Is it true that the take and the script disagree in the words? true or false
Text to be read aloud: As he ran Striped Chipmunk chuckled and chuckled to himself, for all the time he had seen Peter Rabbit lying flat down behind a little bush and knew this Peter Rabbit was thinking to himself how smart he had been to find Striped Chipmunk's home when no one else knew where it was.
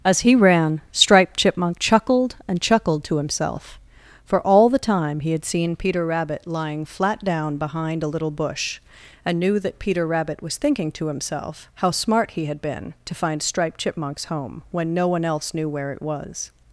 true